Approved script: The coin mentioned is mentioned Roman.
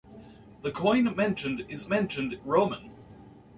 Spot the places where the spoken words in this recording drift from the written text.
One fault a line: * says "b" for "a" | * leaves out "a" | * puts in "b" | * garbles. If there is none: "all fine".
all fine